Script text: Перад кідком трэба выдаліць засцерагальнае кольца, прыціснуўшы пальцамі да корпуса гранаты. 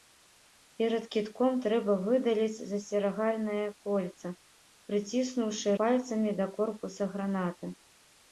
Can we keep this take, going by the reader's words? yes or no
yes